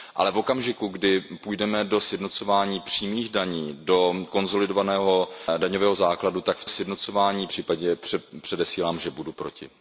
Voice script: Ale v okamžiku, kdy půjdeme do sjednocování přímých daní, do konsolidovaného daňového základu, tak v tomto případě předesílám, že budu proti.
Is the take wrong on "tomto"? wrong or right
wrong